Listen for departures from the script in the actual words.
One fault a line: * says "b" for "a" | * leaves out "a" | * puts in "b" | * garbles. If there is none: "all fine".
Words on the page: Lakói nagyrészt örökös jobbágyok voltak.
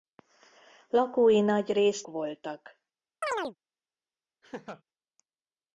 * leaves out "örökös jobbágyok"